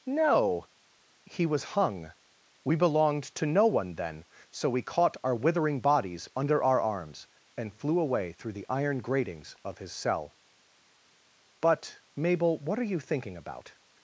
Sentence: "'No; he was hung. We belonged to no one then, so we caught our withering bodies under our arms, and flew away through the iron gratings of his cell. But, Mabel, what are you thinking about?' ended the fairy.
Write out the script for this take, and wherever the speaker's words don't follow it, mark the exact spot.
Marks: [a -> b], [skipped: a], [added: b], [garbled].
"'No; he was hung. We belonged to no one then, so we caught our withering bodies under our arms, and flew away through the iron gratings of his cell. But, Mabel, what are you thinking about?' [skipped: ended the fairy.]